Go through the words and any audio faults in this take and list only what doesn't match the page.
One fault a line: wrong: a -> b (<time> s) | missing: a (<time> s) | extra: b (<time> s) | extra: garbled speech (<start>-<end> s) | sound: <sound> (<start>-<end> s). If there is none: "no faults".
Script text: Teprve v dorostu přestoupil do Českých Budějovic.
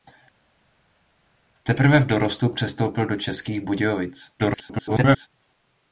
extra: garbled speech (4.4-5.3 s)